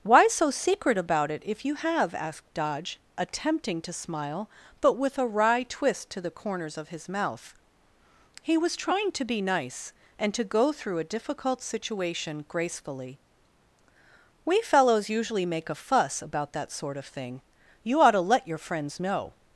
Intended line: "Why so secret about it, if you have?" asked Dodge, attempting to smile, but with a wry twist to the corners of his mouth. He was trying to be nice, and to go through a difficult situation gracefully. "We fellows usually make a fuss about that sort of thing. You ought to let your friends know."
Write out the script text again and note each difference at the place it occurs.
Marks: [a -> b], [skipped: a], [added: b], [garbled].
"Why so secret about it, if you have?" asked Dodge, attempting to smile, but with a wry twist to the corners of his mouth. He was trying to be nice, and to go through a difficult situation gracefully. "We fellows usually make a fuss about that sort of thing. You ought to let your friends know."